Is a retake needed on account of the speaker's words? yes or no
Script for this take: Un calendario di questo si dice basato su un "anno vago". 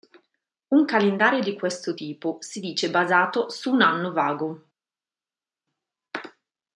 yes